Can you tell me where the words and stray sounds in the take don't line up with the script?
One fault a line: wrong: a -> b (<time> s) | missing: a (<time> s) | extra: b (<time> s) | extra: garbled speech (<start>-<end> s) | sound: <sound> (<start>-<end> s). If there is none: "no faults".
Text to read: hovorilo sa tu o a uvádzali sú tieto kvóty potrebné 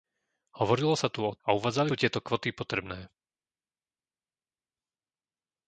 no faults